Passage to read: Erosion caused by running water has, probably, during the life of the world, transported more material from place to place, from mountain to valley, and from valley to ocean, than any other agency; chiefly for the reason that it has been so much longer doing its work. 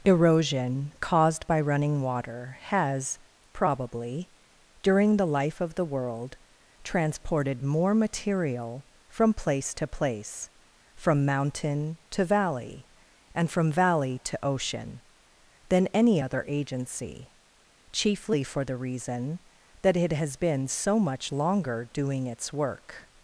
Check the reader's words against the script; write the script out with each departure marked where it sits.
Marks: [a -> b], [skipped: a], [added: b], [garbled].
Erosion caused by running water has, probably, during the life of the world, transported more material from place to place, from mountain to valley, and from valley to ocean, than any other agency; chiefly for the reason that it has been so much longer doing its work.